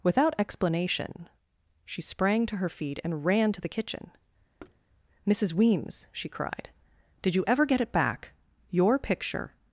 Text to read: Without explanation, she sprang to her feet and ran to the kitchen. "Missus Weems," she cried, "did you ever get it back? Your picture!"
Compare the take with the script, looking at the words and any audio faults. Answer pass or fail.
fail